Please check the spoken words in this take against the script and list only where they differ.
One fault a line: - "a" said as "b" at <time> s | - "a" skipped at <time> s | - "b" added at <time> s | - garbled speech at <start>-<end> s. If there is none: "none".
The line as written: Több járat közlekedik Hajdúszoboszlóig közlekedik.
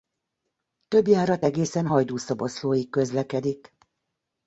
- "közlekedik" said as "egészen" at 1.4 s